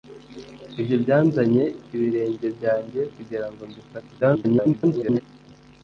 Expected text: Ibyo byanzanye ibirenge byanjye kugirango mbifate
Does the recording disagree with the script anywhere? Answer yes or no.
yes